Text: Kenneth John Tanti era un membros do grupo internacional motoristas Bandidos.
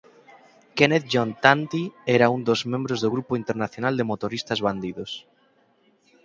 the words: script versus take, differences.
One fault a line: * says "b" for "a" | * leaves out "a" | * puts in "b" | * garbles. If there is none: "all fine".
* puts in "dos"
* puts in "de"